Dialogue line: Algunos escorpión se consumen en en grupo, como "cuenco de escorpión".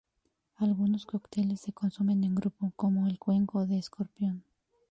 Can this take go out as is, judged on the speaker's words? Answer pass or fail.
fail